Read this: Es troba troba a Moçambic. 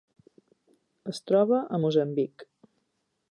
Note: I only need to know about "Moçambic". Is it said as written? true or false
true